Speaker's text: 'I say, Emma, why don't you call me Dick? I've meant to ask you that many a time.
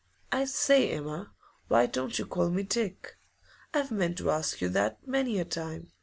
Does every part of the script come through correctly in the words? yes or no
yes